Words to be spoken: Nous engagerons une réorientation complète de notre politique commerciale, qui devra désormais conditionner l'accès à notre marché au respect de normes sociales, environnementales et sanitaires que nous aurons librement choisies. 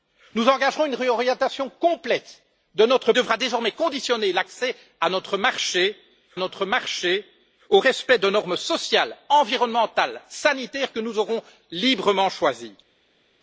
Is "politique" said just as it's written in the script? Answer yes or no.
no